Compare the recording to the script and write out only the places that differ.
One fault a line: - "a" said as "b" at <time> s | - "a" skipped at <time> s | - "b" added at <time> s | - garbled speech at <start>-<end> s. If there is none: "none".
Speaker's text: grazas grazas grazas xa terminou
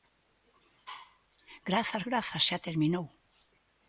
- "grazas" skipped at 2.4 s